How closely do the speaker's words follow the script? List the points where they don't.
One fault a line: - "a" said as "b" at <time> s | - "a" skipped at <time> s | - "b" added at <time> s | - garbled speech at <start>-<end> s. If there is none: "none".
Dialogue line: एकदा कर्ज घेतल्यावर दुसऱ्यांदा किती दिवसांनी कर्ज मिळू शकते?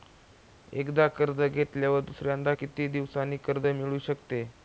none